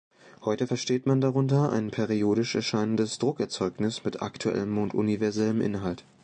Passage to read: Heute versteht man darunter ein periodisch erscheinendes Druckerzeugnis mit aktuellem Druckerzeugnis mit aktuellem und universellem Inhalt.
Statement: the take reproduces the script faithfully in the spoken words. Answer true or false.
false